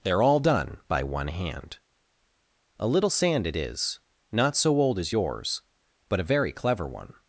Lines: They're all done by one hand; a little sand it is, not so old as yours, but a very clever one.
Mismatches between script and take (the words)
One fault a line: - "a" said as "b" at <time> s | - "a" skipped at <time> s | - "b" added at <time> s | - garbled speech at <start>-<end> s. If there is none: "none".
none